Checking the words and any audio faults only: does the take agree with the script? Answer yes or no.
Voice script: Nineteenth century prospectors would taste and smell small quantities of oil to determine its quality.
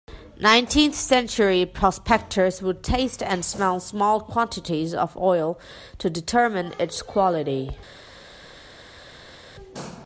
yes